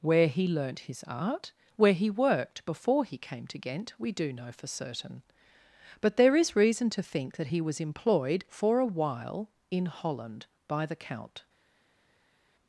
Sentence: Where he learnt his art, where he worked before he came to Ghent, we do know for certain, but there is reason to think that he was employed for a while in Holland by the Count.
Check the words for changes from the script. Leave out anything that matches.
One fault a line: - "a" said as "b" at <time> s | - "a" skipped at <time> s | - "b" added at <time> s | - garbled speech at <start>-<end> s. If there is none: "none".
none